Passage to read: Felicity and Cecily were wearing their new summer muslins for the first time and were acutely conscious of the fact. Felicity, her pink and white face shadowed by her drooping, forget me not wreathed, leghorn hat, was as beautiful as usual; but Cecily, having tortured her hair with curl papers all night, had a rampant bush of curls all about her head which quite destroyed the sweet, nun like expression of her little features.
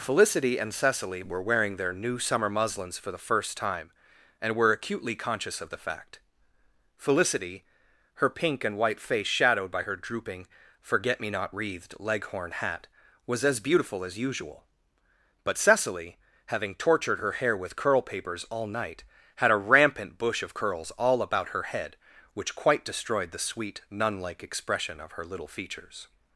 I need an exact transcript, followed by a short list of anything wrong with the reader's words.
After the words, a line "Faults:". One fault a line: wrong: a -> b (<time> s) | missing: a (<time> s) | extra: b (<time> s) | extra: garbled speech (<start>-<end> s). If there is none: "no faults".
Felicity and Cecily were wearing their new summer muslins for the first time and were acutely conscious of the fact. Felicity, her pink and white face shadowed by her drooping, forget me not wreathed, leghorn hat, was as beautiful as usual; but Cecily, having tortured her hair with curl papers all night, had a rampant bush of curls all about her head which quite destroyed the sweet, nun like expression of her little features.
Faults:
no faults